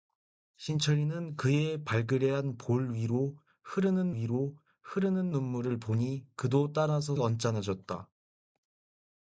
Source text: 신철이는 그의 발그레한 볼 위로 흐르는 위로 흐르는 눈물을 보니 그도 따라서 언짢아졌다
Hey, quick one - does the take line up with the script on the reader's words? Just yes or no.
yes